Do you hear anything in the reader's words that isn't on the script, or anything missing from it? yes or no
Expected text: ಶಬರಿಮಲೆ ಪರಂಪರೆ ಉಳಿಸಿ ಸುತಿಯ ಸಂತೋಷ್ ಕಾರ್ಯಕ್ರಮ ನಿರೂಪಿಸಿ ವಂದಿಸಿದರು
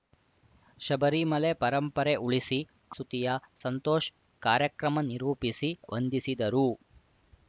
no